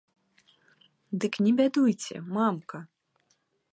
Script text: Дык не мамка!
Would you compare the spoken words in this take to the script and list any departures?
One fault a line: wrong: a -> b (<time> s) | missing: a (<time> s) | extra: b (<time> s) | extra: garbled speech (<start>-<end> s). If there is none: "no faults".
extra: бядуйце (1.6 s)